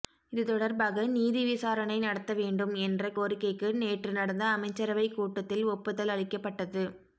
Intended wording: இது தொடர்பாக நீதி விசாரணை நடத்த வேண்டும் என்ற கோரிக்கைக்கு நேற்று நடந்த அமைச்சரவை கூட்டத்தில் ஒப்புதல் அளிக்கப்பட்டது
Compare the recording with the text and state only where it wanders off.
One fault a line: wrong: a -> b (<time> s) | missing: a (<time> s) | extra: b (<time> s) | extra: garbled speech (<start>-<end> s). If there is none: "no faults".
no faults